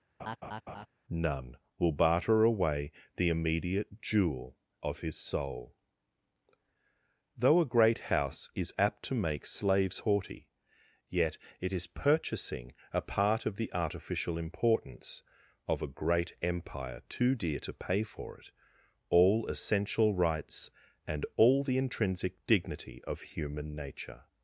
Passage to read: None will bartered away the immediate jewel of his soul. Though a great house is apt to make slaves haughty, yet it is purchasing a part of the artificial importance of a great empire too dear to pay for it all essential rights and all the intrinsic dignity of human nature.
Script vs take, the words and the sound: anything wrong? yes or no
yes